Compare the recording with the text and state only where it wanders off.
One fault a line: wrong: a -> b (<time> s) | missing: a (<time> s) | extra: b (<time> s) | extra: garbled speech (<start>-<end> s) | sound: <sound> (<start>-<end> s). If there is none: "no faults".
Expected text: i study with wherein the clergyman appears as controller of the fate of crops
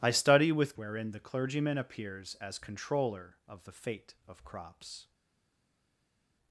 no faults